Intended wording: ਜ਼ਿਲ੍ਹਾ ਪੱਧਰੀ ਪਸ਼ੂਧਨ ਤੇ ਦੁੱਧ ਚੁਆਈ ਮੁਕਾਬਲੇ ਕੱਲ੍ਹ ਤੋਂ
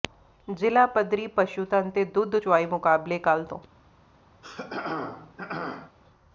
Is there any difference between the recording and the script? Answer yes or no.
no